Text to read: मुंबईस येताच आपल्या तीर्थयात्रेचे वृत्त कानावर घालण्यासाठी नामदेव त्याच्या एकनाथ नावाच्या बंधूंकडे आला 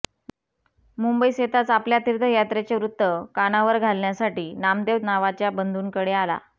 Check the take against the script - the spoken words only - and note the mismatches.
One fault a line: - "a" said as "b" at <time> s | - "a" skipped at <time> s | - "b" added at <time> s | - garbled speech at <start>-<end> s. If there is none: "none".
- "त्याच्या एकनाथ" skipped at 5.0 s